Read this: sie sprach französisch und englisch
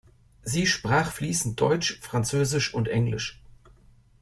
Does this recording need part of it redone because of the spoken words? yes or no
yes